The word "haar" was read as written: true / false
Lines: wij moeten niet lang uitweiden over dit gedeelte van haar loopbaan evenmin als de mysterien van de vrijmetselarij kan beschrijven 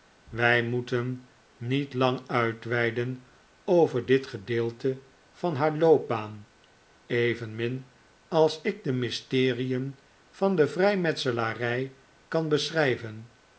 true